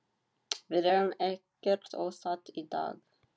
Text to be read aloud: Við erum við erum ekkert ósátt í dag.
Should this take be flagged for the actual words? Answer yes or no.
yes